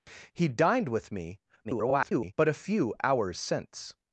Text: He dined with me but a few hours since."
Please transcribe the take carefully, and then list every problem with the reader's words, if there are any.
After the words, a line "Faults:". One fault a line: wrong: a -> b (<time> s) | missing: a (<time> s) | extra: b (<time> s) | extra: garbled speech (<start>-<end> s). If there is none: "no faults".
He dined with me [garbled] but a few hours since."
Faults:
extra: garbled speech (1.6-2.3 s)